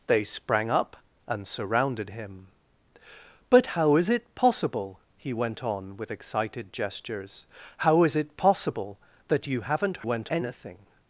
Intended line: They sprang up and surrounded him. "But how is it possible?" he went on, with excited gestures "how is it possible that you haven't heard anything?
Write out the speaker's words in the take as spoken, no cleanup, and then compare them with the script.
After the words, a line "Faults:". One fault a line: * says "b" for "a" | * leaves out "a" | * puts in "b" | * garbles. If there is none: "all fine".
They sprang up and surrounded him. "But how is it possible?" he went on, with excited gestures "how is it possible that you haven't went anything?
Faults:
* says "went" for "heard"